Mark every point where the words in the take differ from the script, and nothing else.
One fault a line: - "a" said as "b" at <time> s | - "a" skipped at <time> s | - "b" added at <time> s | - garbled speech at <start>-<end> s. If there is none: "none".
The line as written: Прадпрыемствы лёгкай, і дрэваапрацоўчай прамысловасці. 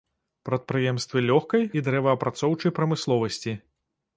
none